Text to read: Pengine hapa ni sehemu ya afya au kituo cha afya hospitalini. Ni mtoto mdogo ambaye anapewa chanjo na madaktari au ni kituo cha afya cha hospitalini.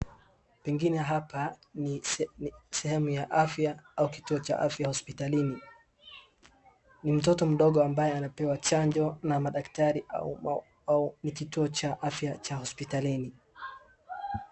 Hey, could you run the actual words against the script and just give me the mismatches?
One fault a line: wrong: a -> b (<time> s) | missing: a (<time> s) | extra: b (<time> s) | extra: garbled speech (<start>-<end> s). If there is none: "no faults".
no faults